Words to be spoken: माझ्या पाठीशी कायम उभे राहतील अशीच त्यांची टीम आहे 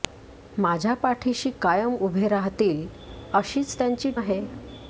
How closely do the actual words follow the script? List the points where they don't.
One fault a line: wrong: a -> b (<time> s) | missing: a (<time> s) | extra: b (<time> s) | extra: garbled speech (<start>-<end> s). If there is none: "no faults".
missing: टीम (4.1 s)